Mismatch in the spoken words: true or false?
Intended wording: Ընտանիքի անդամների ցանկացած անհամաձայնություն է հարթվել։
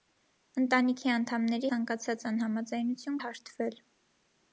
false